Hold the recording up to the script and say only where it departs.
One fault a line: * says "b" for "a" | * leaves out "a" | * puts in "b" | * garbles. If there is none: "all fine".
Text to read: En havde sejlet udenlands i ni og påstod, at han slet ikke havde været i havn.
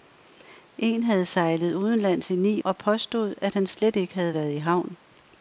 all fine